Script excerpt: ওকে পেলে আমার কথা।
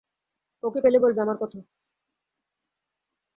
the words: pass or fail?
fail